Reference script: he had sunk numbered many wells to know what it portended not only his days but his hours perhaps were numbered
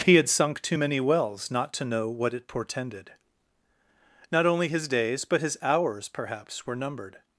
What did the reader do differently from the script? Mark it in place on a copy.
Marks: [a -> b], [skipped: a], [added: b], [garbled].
he had sunk [numbered -> too] many wells [added: not] to know what it portended not only his days but his hours perhaps were numbered